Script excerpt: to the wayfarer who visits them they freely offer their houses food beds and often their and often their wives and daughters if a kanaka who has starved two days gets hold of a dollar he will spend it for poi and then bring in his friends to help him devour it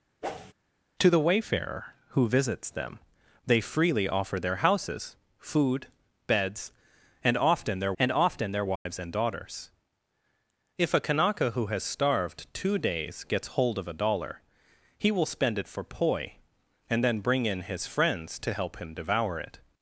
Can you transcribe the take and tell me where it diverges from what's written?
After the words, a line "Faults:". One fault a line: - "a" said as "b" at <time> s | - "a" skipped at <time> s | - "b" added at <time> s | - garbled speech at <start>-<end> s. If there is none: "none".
to the wayfarer who visits them they freely offer their houses food beds and often their and often their wives and daughters if a kanaka who has starved two days gets hold of a dollar he will spend it for poi and then bring in his friends to help him devour it
Faults:
none